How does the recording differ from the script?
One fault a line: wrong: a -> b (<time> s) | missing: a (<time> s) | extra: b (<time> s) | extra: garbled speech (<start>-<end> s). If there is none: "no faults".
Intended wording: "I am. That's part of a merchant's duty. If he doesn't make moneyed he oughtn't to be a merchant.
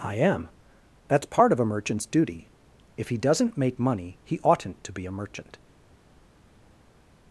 wrong: moneyed -> money (3.8 s)